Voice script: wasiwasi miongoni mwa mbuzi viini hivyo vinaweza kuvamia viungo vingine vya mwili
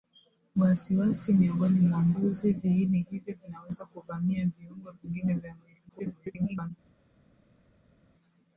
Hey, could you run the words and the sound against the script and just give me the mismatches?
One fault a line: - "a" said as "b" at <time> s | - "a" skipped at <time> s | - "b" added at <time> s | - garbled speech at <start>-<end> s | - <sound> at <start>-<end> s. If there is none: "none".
- garbled speech at 5.9-6.7 s